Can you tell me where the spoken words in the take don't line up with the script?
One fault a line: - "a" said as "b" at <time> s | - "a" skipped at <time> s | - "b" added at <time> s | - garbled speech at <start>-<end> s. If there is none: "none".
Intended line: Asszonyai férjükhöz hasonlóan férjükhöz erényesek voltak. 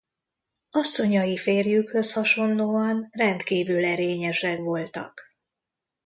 - "férjükhöz" said as "rendkívül" at 3.1 s